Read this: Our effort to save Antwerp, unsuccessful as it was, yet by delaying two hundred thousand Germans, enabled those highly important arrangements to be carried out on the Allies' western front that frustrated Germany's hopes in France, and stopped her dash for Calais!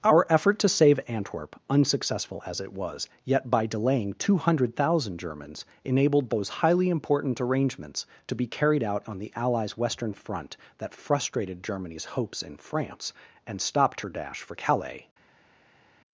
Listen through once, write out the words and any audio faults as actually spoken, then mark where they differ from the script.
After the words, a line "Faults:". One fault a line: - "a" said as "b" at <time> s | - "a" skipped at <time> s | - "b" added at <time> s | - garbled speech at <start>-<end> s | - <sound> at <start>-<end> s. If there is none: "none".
Our effort to save Antwerp, unsuccessful as it was, yet by delaying two hundred thousand Germans, enabled those highly important arrangements to be carried out on the Allies' western front that frustrated Germany's hopes in France, and stopped her dash for Calais!
Faults:
none